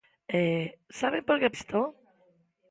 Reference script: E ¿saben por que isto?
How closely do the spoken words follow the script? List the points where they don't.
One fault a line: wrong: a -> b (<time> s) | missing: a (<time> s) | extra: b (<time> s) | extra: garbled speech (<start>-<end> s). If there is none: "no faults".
no faults